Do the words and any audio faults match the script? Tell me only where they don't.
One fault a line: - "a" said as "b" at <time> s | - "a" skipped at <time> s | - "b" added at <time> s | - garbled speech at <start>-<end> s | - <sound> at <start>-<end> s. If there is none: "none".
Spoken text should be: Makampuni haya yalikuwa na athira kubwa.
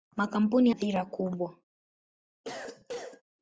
- "haya yalikuwa na" skipped at 0.7 s
- cough at 2.4-3.2 s